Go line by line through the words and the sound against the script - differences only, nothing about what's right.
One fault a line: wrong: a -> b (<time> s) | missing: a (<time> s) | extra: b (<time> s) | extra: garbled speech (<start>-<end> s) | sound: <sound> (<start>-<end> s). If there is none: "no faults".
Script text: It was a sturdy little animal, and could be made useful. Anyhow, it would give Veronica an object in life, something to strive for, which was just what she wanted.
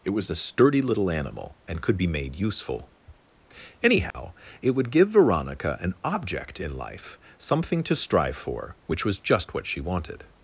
sound: dropout (4.1-4.1 s)